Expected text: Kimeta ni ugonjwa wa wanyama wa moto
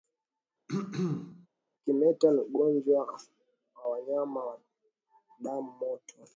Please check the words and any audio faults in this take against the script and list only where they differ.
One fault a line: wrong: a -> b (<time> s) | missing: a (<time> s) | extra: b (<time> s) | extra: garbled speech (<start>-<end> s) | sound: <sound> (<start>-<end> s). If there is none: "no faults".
sound: throat clearing (0.7-1.5 s)
extra: damu (5.4 s)